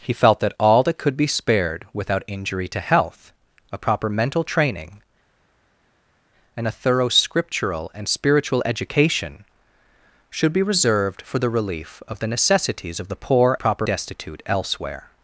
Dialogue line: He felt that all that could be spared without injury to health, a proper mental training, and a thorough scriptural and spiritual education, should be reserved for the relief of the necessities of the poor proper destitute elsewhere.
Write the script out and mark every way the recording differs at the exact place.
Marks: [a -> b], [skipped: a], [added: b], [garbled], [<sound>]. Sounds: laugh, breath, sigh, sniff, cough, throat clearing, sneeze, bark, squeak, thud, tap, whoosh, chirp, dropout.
He felt that all that could be spared without injury to health, a proper mental training, and a thorough scriptural and spiritual education, should be reserved for the relief of the necessities of the poor proper destitute elsewhere.